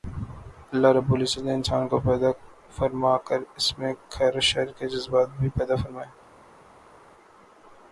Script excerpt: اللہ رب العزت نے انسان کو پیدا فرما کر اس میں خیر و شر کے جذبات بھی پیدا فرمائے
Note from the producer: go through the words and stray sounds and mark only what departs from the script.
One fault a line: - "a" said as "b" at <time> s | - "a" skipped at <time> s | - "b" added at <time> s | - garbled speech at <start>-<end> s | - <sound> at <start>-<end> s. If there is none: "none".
none